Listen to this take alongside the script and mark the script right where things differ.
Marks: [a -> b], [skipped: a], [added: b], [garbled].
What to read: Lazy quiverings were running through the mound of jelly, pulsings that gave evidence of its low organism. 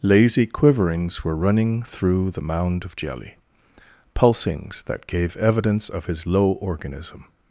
Lazy quiverings were running through the mound of jelly, pulsings that gave evidence of [its -> his] low organism.